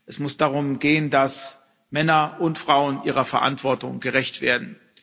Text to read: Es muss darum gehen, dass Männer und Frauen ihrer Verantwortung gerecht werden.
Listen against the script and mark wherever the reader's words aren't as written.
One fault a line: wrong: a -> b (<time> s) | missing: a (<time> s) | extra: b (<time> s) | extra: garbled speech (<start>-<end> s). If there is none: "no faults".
no faults